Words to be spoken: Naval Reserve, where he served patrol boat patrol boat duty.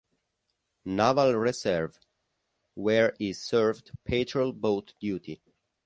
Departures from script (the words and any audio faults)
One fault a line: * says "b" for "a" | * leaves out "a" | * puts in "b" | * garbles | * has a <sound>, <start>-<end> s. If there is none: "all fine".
* leaves out "patrol boat"